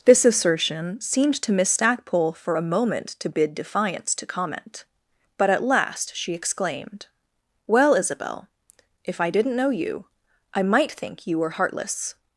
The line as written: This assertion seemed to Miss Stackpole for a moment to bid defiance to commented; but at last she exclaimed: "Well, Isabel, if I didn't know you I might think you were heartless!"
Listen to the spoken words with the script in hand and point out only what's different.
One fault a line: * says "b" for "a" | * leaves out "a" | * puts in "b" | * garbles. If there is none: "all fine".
* says "comment" for "commented"